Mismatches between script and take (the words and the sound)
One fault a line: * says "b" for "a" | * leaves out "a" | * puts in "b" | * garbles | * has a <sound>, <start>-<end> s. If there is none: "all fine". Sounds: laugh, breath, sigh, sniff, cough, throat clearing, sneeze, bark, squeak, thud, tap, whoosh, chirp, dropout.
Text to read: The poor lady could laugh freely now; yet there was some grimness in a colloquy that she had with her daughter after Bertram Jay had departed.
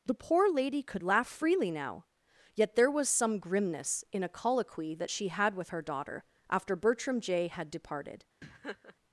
* has a laugh, 8.4-9.0 s